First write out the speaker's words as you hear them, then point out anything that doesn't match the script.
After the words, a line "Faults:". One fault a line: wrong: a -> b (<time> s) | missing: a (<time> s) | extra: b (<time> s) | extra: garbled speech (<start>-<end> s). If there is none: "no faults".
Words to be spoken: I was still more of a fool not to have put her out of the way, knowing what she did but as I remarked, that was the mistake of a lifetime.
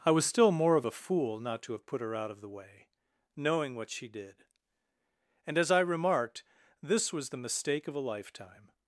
I was still more of a fool not to have put her out of the way, knowing what she did and as I remarked, this was the mistake of a lifetime.
Faults:
wrong: but -> and (5.5 s)
wrong: that -> this (6.8 s)